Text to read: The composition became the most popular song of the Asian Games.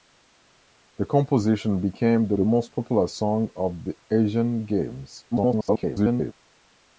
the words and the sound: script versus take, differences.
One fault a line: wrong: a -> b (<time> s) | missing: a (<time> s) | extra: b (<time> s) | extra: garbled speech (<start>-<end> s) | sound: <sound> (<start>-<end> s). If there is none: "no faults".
extra: the (2.3 s)
extra: garbled speech (5.3-6.3 s)